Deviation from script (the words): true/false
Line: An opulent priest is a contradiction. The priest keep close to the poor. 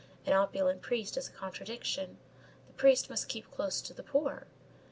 true